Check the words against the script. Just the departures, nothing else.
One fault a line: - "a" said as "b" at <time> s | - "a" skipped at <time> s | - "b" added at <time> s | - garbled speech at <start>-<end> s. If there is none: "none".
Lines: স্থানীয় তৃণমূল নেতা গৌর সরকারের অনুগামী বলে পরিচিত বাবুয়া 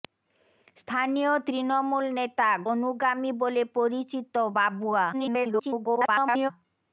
- "গৌর সরকারের" skipped at 2.5 s
- garbled speech at 5.1-6.5 s